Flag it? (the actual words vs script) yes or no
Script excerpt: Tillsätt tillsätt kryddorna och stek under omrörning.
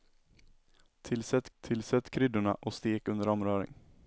no